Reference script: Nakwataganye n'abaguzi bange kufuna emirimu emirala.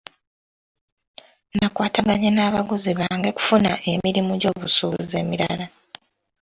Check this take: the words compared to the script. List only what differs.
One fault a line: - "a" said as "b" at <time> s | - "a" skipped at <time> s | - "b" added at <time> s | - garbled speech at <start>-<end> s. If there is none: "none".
- "gy'obusuubuzi" added at 4.4 s